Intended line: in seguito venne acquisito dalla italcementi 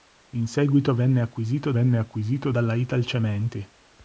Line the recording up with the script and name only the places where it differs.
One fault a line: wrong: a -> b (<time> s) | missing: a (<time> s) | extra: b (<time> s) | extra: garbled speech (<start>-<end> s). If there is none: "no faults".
extra: venne acquisito (1.7 s)